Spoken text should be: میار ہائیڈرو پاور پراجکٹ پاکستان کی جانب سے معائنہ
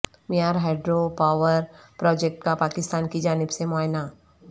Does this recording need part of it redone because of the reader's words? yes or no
yes